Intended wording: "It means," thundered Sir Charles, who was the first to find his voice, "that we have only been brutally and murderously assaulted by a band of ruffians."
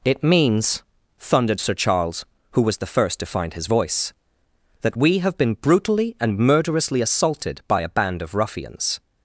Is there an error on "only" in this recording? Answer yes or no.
yes